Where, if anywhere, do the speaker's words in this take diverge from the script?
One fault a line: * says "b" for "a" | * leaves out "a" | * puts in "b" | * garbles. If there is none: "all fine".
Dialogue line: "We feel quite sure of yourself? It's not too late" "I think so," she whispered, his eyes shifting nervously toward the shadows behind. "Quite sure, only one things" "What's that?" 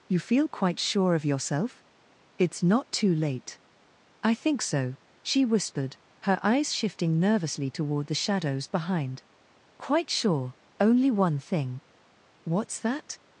* says "You" for "We"
* says "her" for "his"
* says "thing" for "things"